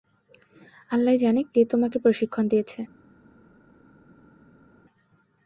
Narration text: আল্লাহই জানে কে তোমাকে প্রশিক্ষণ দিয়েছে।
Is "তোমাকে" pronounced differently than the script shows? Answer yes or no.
no